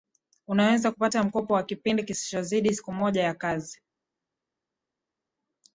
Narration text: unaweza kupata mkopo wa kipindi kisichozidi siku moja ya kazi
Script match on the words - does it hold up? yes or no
yes